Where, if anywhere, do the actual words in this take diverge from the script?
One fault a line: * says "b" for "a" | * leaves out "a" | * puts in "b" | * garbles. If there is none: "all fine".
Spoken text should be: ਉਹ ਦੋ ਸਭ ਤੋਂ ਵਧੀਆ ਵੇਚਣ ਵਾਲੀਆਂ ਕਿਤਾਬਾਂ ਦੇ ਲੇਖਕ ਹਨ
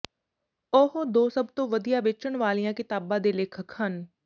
all fine